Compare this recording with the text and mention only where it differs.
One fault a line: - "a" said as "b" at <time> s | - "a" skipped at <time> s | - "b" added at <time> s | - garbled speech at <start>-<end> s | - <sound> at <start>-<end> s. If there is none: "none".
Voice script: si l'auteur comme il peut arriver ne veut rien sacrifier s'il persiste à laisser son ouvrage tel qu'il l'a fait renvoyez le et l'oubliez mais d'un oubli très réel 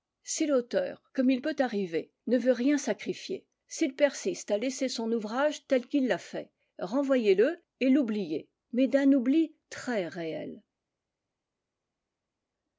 none